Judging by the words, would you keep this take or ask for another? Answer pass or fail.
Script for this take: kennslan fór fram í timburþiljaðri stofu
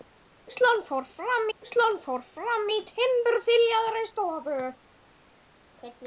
fail